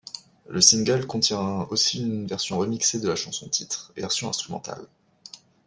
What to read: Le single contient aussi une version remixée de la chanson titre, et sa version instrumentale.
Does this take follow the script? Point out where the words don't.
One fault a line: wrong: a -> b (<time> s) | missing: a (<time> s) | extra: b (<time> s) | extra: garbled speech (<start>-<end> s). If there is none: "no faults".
missing: sa (4.0 s)